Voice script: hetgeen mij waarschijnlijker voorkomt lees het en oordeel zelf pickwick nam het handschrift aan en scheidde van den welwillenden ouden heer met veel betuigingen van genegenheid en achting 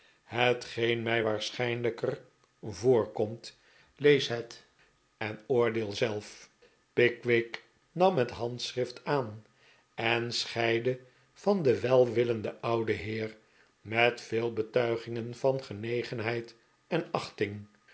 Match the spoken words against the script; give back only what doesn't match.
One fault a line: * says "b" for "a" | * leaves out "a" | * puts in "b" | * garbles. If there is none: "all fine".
all fine